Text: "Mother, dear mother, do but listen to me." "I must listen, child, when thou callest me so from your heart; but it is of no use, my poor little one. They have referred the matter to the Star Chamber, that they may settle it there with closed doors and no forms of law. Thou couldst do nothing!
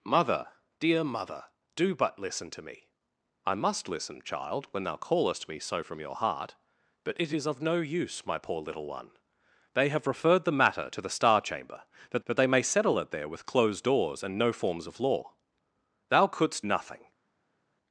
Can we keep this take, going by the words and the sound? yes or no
no